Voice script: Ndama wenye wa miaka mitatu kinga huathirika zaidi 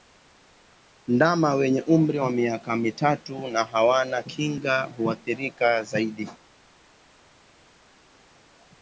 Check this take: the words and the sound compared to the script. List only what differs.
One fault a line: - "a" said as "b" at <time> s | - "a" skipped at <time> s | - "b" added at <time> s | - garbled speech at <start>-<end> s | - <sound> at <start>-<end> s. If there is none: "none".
- "umri" added at 1.8 s
- "na hawana" added at 3.5 s